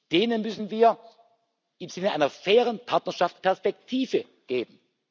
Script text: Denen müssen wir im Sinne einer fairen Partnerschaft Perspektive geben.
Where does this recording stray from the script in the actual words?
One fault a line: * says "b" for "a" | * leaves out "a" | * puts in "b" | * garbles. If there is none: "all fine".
all fine